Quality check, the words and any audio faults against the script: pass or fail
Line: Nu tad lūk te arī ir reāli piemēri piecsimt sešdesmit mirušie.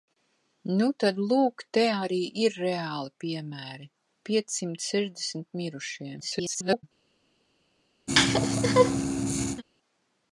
fail